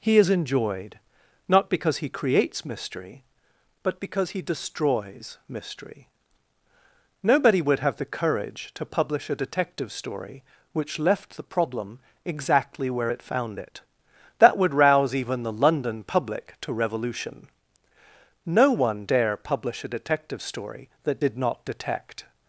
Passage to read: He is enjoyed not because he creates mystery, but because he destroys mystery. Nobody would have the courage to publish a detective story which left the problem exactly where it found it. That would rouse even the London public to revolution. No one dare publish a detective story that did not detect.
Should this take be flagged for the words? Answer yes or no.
no